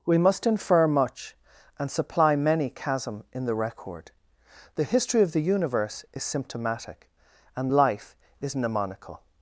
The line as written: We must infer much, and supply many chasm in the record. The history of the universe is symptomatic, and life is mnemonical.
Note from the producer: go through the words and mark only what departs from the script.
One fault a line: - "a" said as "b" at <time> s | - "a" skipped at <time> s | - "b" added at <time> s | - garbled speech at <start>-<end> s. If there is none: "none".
none